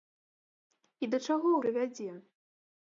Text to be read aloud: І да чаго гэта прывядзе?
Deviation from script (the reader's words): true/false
true